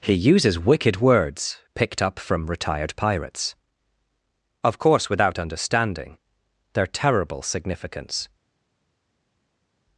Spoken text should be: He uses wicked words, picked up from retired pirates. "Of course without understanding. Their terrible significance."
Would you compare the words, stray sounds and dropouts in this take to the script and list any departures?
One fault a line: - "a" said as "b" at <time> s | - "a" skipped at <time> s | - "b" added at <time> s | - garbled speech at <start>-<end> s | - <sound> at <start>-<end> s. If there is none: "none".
none